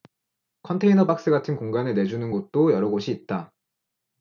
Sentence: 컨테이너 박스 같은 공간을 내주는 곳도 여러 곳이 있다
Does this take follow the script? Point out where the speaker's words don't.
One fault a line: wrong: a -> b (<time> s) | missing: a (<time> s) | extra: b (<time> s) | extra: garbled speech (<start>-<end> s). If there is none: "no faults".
no faults